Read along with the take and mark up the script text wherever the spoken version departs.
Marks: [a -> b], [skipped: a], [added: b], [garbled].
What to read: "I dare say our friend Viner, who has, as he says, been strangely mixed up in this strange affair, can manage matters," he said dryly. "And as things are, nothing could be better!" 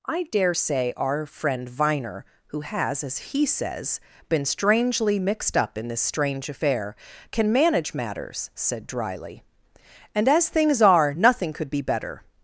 "I dare say our friend Viner, who has, as he says, been strangely mixed up in this strange affair, can manage matters," [skipped: he] said dryly. "And as things are, nothing could be better!"